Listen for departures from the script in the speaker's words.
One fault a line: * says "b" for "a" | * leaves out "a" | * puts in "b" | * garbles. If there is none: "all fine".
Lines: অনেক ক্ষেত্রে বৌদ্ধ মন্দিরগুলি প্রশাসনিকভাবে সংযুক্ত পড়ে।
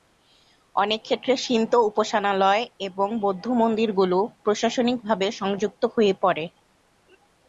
* puts in "শিন্তো উপাসনালয় এবং"
* puts in "হয়ে"